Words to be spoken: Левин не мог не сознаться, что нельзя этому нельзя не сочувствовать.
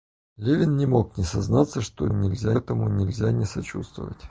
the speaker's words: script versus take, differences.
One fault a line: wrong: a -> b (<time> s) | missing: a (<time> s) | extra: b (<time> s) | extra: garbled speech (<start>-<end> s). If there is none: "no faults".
no faults